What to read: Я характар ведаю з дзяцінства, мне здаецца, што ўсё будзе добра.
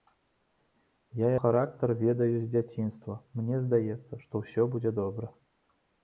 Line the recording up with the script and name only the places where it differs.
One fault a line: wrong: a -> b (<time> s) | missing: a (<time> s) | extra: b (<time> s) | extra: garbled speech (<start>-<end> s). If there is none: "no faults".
no faults